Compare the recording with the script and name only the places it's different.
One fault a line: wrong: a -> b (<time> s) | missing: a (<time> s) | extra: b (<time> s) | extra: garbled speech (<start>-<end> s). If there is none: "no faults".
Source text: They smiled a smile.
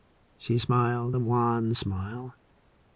wrong: They -> She (0.4 s)
extra: wan (1.2 s)